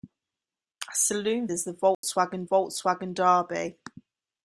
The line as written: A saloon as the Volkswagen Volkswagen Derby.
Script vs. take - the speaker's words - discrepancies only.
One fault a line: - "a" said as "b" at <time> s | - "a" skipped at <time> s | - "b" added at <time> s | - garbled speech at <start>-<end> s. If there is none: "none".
none